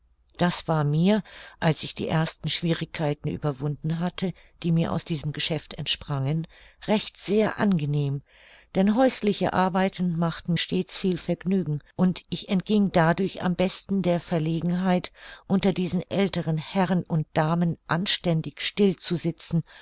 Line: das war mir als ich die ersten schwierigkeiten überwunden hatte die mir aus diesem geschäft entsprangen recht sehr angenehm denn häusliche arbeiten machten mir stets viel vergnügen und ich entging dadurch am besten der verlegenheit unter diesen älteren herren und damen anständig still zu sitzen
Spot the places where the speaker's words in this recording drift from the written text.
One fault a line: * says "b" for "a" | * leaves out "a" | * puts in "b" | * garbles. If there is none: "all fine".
* leaves out "mir"